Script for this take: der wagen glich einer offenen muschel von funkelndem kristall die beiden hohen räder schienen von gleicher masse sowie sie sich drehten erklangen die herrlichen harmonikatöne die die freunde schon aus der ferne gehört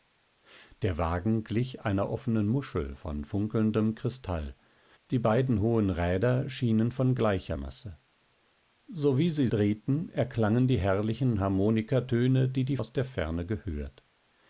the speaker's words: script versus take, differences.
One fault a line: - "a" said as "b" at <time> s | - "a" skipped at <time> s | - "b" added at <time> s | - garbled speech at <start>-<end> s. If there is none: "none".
- "sich" skipped at 9.5 s
- "freunde schon" skipped at 12.8 s